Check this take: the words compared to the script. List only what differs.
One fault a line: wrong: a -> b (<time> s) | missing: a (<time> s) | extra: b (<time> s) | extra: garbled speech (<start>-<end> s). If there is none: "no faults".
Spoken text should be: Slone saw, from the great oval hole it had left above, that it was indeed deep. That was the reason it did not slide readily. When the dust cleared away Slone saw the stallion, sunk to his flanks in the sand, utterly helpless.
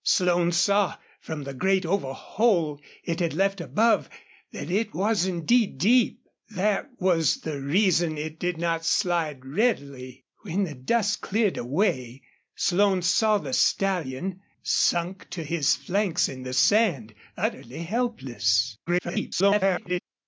extra: garbled speech (18.9-20.0 s)